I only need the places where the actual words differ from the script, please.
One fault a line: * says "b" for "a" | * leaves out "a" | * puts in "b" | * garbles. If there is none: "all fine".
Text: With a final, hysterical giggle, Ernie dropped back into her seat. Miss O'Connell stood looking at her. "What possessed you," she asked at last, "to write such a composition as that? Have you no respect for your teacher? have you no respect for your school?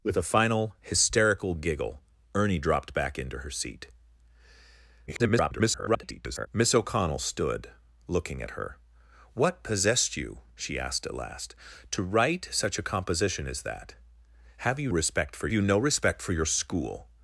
* garbles
* leaves out "no"
* leaves out "your teacher have"